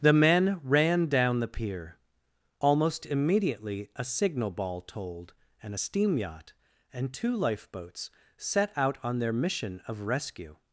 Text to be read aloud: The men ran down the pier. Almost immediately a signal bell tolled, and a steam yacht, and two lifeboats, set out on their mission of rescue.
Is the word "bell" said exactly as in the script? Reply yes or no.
no